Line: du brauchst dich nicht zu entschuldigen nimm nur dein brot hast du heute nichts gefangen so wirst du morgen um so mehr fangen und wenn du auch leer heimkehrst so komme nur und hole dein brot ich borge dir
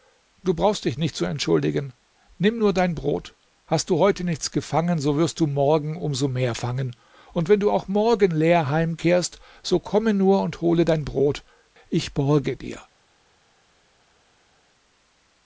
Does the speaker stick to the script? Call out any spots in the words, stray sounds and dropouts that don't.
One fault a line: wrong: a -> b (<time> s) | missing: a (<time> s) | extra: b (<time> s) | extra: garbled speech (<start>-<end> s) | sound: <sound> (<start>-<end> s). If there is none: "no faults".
extra: morgen (7.9 s)